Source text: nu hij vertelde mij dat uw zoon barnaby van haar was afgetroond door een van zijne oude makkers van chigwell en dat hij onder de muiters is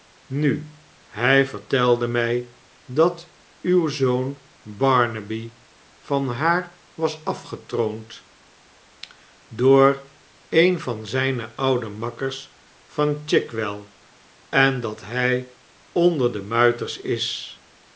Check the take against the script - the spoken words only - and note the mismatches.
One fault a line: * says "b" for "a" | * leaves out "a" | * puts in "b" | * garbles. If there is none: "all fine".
all fine